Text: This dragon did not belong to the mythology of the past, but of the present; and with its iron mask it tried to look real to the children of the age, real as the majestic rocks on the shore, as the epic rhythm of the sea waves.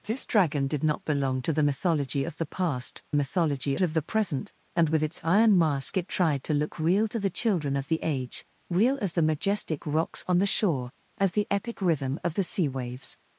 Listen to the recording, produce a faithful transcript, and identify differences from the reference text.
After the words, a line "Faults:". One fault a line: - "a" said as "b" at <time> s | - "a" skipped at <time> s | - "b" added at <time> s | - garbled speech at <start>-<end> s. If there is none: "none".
This dragon did not belong to the mythology of the past, mythology of the present; and with its iron mask it tried to look real to the children of the age, real as the majestic rocks on the shore, as the epic rhythm of the sea waves.
Faults:
- "but" said as "mythology" at 3.1 s